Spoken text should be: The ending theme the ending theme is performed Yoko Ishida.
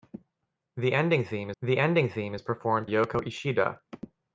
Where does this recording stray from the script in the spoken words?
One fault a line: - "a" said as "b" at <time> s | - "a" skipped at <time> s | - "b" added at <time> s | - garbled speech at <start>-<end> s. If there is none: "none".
none